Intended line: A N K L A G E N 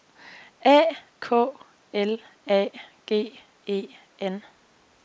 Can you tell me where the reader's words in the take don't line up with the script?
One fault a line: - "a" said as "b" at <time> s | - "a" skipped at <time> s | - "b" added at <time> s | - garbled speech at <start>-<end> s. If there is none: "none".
- "N" skipped at 1.0 s